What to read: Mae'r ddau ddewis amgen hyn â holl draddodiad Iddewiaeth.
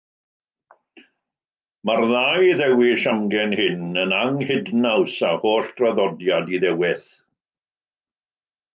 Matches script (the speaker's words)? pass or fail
fail